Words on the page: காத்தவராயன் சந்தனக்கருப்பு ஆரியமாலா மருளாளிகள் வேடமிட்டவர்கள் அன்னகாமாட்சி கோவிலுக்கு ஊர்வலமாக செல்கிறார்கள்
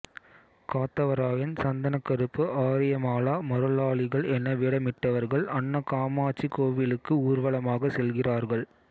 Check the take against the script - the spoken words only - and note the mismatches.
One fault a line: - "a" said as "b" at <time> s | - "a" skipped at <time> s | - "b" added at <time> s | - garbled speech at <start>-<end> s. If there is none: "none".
- "என" added at 4.3 s